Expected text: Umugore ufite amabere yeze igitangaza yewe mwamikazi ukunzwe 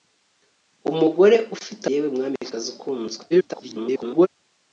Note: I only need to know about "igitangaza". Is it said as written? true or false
false